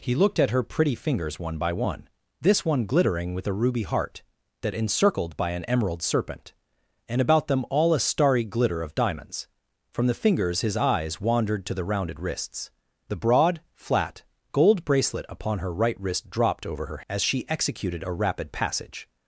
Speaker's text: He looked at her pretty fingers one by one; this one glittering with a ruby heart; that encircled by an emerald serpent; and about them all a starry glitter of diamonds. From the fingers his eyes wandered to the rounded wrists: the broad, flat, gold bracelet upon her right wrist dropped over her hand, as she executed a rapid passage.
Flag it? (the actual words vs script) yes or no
yes